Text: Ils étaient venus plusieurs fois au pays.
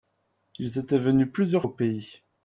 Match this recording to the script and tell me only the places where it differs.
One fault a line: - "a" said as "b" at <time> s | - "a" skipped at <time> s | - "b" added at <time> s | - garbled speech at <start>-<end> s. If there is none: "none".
- "fois" skipped at 1.7 s